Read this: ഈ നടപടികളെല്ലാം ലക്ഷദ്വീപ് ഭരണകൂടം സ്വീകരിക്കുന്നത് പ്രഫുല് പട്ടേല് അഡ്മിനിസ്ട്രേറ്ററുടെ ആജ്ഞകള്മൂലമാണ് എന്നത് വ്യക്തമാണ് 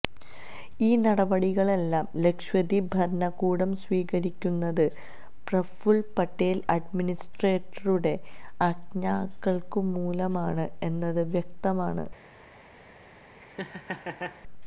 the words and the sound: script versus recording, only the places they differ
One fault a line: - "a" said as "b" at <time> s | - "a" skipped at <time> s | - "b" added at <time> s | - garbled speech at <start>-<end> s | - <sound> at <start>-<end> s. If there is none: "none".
- laugh at 13.4-14.4 s